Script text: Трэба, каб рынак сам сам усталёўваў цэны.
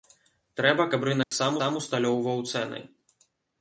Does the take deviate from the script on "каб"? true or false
false